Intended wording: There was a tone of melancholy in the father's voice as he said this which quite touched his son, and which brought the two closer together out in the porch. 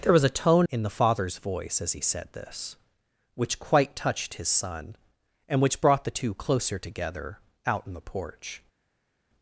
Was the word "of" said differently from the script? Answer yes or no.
yes